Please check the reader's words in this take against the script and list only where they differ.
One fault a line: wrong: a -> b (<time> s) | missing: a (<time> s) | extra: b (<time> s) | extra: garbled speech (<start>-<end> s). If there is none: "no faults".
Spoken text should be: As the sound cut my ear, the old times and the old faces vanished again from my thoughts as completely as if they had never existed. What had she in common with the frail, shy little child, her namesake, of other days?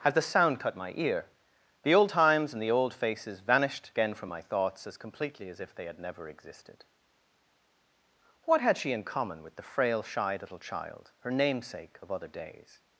no faults